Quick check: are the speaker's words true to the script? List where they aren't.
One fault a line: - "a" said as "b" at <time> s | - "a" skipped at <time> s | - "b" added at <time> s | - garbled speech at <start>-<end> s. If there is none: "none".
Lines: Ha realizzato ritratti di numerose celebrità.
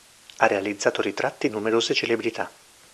- "di" skipped at 1.5 s